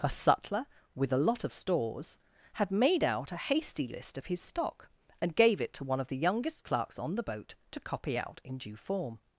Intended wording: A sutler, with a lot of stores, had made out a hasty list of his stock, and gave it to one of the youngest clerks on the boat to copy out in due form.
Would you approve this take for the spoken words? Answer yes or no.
yes